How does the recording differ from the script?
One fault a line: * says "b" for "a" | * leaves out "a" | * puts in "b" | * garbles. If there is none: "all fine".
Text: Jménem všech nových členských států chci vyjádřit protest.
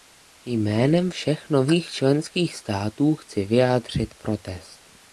all fine